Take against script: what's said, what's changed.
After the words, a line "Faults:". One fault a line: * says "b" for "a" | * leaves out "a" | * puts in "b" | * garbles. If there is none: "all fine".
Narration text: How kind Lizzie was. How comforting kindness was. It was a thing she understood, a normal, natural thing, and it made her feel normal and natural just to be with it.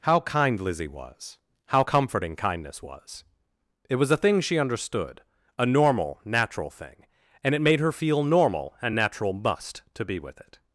How kind Lizzie was. How comforting kindness was. It was a thing she understood, a normal, natural thing, and it made her feel normal and natural must to be with it.
Faults:
* says "must" for "just"